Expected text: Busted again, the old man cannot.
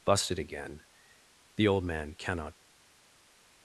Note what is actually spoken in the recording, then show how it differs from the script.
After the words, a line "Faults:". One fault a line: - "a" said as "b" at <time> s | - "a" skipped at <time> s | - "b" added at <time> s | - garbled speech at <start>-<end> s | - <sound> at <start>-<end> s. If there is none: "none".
Busted again, the old man cannot.
Faults:
none